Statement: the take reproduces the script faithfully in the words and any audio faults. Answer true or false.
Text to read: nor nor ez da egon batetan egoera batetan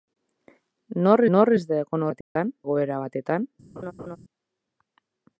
false